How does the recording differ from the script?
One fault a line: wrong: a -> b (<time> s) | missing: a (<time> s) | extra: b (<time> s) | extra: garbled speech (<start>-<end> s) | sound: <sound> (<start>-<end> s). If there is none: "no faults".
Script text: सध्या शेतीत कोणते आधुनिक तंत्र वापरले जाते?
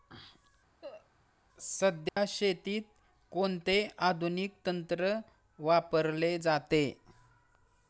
sound: cough (0.8-1.1 s)
sound: dropout (2.1-2.2 s)